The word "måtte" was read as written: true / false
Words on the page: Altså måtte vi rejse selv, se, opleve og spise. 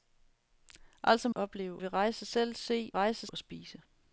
false